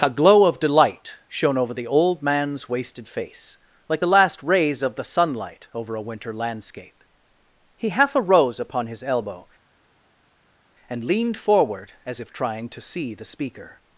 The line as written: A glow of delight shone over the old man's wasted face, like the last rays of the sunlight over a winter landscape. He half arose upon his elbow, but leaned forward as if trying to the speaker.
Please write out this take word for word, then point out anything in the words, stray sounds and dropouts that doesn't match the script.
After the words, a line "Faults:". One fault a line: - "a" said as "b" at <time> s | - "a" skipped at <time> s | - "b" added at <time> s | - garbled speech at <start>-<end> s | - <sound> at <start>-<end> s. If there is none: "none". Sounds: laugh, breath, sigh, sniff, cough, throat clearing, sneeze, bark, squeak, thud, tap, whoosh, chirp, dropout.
A glow of delight shone over the old man's wasted face, like the last rays of the sunlight over a winter landscape. He half arose upon his elbow, and leaned forward as if trying to see the speaker.
Faults:
- "but" said as "and" at 10.9 s
- "see" added at 12.8 s